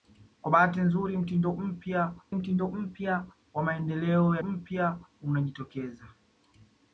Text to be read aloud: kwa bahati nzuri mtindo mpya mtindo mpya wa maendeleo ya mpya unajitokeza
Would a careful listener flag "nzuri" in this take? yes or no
no